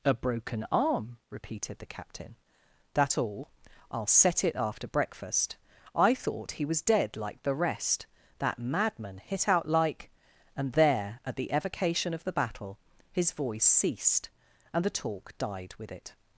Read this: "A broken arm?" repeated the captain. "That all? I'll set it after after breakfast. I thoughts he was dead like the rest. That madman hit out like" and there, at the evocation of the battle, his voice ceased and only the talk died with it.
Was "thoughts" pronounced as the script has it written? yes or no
no